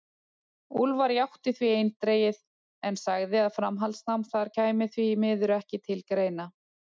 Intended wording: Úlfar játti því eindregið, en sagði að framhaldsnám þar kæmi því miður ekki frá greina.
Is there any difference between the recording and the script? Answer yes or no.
yes